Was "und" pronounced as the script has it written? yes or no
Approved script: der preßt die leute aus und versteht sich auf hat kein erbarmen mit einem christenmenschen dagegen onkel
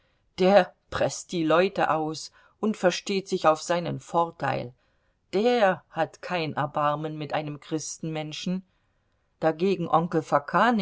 yes